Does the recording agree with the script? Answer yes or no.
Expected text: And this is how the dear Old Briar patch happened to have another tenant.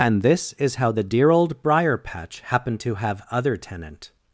no